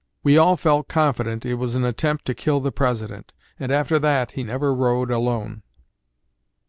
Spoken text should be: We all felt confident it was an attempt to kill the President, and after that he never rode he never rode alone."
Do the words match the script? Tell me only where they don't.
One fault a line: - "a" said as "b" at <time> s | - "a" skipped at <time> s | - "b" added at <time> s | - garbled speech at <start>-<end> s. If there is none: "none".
- "he never rode" skipped at 5.1 s